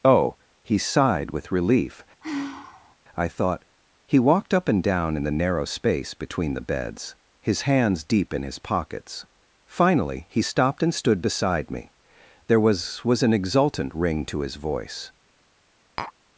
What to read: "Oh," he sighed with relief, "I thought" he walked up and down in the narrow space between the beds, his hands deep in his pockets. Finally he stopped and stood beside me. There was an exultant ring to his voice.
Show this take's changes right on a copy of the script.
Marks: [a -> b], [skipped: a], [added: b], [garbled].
"Oh," he sighed with relief, "I thought" he walked up and down in the narrow space between the beds, his hands deep in his pockets. Finally he stopped and stood beside me. There was [added: was] an exultant ring to his voice.